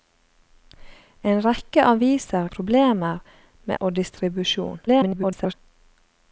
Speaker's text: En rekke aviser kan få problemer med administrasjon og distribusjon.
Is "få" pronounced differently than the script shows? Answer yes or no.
yes